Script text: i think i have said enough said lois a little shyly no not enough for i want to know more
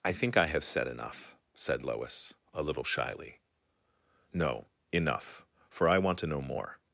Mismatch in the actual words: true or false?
true